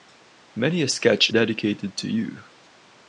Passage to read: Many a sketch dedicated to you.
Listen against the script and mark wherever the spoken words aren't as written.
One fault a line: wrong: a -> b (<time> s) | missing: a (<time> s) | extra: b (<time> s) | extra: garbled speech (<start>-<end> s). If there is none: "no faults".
no faults